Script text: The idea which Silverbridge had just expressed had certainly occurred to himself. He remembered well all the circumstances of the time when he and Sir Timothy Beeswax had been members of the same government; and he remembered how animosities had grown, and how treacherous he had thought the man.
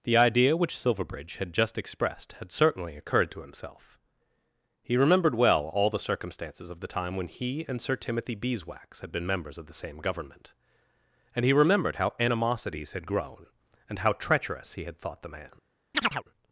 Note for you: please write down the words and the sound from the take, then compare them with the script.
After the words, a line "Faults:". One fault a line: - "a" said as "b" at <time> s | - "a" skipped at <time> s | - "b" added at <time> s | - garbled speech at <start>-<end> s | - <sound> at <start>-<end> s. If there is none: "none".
The idea which Silverbridge had just expressed had certainly occurred to himself. He remembered well all the circumstances of the time when he and Sir Timothy Beeswax had been members of the same government; and he remembered how animosities had grown, and how treacherous he had thought the man.
Faults:
- chirp at 15.9-16.2 s